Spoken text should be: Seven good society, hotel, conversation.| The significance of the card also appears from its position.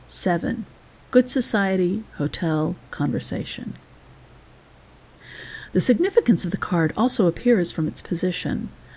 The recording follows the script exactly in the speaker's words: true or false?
true